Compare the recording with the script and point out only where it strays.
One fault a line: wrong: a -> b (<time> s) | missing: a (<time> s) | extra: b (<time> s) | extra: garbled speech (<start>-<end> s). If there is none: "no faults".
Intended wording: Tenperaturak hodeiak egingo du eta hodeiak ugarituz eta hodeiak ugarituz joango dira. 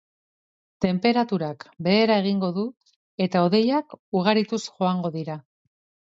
wrong: hodeiak -> behera (1.9 s)
missing: eta hodeiak ugarituz (4.6 s)